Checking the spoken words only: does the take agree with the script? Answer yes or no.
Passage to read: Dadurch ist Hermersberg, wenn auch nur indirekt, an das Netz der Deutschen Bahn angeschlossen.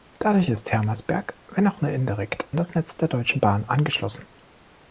no